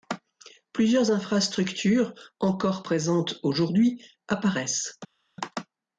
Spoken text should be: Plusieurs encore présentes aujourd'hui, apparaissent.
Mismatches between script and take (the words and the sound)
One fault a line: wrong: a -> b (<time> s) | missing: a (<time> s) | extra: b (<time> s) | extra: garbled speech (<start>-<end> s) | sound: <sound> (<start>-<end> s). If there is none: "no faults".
extra: infrastructures (1.1 s)